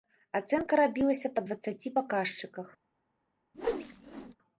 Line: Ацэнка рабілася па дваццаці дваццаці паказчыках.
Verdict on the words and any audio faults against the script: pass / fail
fail